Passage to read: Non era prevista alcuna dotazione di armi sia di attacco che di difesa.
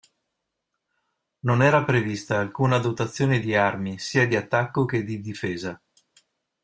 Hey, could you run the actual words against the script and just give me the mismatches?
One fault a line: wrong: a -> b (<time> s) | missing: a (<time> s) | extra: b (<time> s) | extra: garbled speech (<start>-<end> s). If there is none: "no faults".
no faults